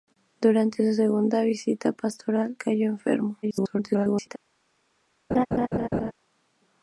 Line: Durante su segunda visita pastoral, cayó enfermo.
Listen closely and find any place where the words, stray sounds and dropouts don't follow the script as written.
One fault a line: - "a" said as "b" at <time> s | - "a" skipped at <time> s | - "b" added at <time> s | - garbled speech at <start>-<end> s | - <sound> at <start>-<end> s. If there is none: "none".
- garbled speech at 3.4-4.4 s
- laugh at 5.3-6.1 s